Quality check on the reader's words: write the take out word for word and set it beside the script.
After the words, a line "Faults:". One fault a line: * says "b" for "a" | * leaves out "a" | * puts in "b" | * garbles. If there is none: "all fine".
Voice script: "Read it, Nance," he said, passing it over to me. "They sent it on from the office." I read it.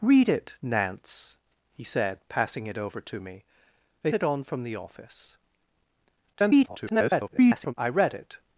"Read it, Nance," he said, passing it over to me. "They it on from the office." [garbled] I read it.
Faults:
* leaves out "sent"
* garbles